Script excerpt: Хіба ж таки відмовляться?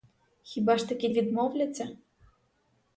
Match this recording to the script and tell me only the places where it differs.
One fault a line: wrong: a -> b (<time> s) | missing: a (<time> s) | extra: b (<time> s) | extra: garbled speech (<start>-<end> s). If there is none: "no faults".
no faults